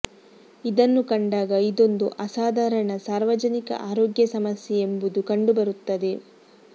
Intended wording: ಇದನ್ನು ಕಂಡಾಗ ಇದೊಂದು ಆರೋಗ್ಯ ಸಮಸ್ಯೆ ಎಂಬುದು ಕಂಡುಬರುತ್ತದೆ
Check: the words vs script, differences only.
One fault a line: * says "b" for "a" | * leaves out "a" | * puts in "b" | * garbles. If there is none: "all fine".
* puts in "ಅಸಾಧಾರಣ ಸಾರ್ವಜನಿಕ"